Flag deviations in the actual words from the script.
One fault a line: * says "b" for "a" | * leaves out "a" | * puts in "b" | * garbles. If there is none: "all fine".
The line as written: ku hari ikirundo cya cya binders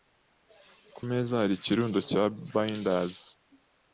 * puts in "meza"
* leaves out "cya"